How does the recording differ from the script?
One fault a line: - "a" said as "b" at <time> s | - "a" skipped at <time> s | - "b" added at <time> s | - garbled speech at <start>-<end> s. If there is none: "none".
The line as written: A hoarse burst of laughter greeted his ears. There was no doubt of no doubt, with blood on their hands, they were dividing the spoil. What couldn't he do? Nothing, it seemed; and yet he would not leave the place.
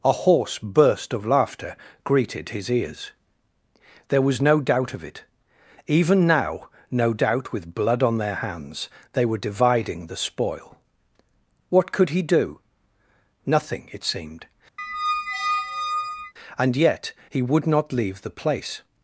- "it Even now" added at 5.0 s
- "couldn't" said as "could" at 11.9 s